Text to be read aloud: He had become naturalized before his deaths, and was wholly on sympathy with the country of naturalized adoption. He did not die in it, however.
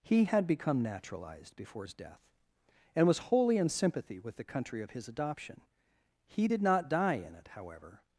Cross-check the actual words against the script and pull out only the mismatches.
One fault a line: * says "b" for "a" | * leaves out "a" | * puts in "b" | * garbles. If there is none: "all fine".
* says "death" for "deaths"
* says "in" for "on"
* says "his" for "naturalized"